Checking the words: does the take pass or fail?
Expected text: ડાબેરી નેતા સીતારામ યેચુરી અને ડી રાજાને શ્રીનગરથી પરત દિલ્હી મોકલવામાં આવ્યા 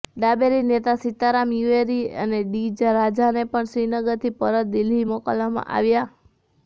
fail